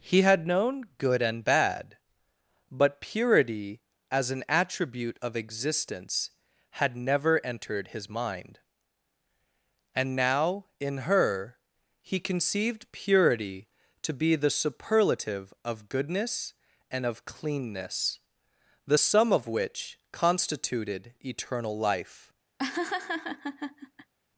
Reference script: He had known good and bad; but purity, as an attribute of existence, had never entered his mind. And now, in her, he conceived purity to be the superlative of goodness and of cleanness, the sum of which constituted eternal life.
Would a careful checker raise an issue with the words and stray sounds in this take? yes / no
yes